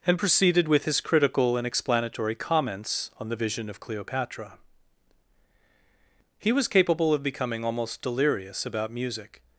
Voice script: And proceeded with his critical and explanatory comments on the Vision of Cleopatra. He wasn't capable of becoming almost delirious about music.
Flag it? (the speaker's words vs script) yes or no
yes